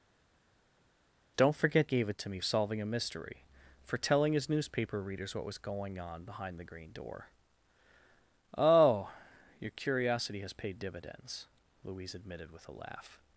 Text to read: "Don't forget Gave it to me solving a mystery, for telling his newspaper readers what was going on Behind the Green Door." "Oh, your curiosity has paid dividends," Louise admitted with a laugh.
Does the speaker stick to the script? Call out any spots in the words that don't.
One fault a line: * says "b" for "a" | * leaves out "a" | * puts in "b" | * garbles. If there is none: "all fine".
all fine